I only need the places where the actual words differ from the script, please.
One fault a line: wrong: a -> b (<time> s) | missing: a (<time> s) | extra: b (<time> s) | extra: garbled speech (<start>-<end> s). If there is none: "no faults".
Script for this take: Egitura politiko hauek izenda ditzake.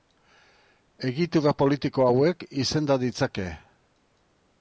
no faults